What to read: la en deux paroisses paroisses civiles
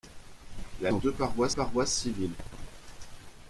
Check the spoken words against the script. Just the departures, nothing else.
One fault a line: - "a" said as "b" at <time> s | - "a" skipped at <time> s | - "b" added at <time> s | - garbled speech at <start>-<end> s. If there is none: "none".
none